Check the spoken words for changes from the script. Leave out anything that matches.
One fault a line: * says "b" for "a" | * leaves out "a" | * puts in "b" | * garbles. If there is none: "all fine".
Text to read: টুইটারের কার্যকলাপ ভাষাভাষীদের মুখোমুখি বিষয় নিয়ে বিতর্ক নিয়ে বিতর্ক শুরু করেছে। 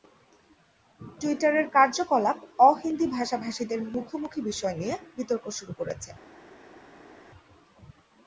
* puts in "অ হিন্দি"
* leaves out "নিয়ে বিতর্ক"